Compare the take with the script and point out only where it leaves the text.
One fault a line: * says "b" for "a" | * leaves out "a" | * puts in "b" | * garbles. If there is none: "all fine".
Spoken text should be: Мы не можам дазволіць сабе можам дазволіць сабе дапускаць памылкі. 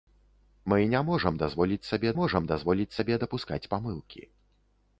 all fine